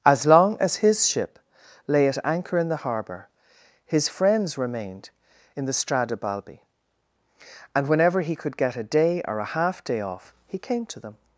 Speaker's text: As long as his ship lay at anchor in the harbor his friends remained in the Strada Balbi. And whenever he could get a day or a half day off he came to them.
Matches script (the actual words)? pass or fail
pass